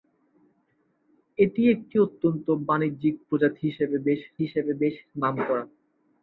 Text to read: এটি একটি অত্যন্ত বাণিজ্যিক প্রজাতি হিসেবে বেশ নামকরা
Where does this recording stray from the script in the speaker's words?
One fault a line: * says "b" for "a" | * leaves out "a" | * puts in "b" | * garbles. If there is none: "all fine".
* puts in "হিসেবে বেশ"